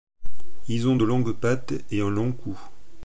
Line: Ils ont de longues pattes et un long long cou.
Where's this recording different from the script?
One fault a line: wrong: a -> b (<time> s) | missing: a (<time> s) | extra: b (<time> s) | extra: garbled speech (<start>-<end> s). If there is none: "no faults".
missing: long (2.3 s)